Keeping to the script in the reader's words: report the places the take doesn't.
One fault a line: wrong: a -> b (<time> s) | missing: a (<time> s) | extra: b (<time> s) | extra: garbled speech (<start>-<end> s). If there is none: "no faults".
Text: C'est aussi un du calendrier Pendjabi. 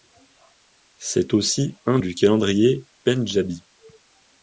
no faults